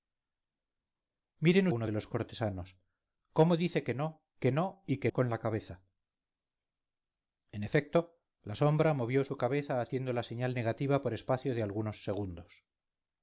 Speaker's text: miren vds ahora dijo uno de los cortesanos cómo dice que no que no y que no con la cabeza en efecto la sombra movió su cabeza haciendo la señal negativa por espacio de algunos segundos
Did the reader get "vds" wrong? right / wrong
wrong